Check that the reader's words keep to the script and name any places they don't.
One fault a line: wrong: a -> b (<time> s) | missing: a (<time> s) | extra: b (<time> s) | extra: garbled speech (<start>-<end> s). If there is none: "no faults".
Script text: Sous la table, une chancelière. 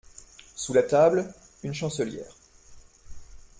no faults